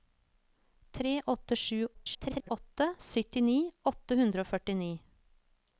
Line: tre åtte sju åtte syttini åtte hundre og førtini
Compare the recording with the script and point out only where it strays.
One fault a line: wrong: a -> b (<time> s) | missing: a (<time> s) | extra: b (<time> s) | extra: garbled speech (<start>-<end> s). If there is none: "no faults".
extra: garbled speech (1.9-2.5 s)